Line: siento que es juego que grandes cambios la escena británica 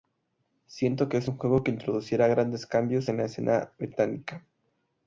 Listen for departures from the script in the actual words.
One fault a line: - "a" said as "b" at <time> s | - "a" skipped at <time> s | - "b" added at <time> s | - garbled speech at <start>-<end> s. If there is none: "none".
- "un" added at 1.3 s
- "introducirá" added at 1.7 s
- "en" added at 3.1 s